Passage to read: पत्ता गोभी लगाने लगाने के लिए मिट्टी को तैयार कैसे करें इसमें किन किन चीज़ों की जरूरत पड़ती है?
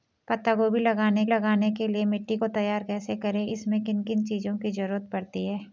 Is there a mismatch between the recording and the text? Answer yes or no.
no